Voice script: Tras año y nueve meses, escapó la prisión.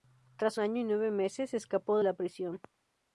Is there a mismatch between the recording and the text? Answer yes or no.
no